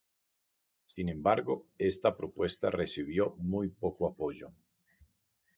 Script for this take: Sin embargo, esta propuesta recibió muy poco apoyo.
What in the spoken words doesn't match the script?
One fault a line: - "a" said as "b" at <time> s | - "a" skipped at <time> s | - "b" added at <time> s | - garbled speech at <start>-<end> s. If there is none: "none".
none